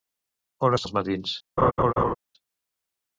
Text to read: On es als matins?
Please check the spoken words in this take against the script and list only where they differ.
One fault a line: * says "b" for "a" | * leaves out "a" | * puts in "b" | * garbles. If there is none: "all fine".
all fine